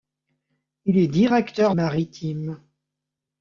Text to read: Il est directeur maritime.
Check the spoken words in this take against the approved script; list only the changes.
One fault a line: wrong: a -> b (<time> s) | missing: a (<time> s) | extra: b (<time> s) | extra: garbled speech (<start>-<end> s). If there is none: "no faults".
no faults